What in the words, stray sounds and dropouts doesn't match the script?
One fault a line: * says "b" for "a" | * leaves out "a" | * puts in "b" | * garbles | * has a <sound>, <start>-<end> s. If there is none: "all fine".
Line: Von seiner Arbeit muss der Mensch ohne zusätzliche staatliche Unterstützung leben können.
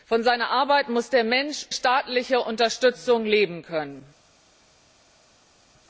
* leaves out "ohne zusätzliche"